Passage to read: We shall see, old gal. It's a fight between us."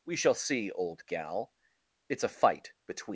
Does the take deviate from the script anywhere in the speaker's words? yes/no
yes